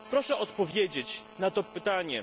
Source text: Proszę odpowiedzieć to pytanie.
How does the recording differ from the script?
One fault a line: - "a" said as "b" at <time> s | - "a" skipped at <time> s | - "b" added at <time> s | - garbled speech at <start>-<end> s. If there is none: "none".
- "na" added at 1.4 s